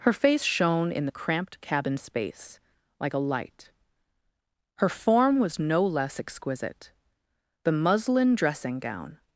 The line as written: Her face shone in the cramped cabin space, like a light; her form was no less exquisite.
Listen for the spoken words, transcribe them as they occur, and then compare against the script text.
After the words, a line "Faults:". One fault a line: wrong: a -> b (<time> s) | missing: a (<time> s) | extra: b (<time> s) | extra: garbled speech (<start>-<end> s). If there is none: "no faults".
Her face shone in the cramped cabin space, like a light; her form was no less exquisite. The muslin dressing gown
Faults:
extra: The muslin dressing gown (7.6 s)